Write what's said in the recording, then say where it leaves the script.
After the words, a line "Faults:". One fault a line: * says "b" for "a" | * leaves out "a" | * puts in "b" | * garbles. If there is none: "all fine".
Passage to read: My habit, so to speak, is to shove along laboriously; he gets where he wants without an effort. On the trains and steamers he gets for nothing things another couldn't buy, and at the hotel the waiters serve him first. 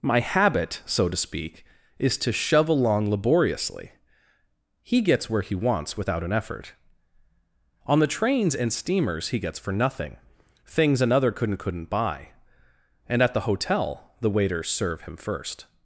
My habit, so to speak, is to shove along laboriously; he gets where he wants without an effort. On the trains and steamers he gets for nothing things another couldn't couldn't buy, and at the hotel the waiters serve him first.
Faults:
* puts in "couldn't"